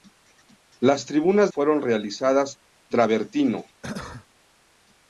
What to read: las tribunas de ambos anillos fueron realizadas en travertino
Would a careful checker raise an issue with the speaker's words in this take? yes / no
yes